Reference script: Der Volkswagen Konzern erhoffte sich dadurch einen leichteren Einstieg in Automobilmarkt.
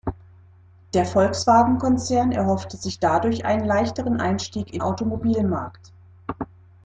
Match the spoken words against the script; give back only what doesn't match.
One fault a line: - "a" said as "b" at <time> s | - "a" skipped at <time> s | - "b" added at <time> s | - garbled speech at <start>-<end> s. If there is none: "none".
none